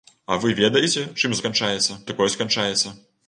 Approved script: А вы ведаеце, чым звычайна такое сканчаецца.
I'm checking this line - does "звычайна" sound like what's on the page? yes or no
no